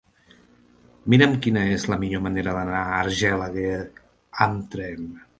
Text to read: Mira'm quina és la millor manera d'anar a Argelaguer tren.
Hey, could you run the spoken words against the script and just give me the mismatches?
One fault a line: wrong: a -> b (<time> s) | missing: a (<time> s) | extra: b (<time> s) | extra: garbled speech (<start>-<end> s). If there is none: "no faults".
extra: amb (4.5 s)